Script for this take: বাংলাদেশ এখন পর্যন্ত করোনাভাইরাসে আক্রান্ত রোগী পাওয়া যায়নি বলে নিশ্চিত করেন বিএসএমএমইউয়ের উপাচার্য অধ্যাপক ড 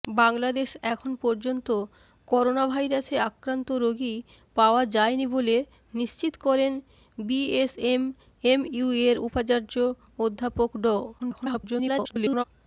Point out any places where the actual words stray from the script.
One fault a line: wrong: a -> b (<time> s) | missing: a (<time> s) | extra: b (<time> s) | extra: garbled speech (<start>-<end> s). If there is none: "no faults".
extra: garbled speech (11.2-12.4 s)